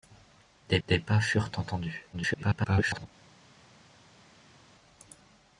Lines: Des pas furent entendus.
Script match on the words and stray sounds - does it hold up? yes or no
no